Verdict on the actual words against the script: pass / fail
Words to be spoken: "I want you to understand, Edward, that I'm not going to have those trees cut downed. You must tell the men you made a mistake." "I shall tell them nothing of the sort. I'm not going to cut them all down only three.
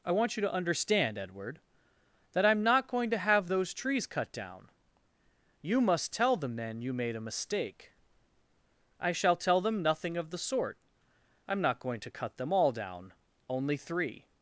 fail